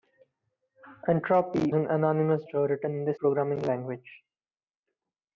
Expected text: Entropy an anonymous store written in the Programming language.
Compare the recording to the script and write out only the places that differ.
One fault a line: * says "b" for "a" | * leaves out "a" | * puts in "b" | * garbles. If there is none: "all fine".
all fine